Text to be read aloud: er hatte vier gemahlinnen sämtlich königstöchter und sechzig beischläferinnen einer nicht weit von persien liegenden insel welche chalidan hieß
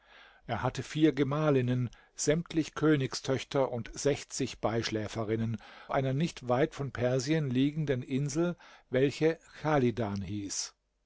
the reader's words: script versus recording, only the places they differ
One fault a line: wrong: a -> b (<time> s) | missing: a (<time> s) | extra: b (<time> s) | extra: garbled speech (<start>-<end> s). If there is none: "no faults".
no faults